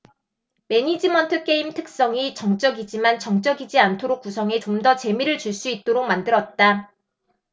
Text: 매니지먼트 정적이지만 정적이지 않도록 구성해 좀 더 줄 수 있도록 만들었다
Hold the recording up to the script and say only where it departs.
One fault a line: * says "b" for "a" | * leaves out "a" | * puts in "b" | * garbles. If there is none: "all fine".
* puts in "게임 특성이"
* puts in "재미를"